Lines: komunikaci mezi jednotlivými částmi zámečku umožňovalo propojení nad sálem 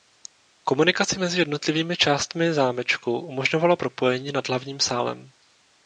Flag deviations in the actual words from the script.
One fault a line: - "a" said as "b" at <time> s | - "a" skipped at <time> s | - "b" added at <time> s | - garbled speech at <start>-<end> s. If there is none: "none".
- "hlavním" added at 4.5 s